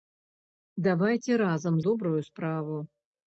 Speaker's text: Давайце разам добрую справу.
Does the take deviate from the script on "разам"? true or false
false